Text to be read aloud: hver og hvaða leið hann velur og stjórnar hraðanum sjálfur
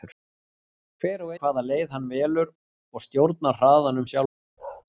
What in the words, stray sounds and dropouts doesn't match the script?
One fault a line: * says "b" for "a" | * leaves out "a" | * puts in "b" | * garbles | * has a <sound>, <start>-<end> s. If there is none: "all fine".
* has a bark, 4.6-4.8 s